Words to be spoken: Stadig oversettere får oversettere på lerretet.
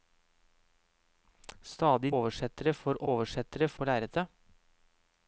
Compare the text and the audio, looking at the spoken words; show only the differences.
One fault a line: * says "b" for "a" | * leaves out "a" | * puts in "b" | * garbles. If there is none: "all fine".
all fine